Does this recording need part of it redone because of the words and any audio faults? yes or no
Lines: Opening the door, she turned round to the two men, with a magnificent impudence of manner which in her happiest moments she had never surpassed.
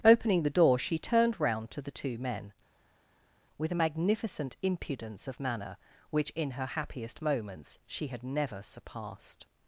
no